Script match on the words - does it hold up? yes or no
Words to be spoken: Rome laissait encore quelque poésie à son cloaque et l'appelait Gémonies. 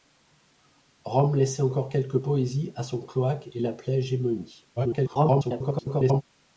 no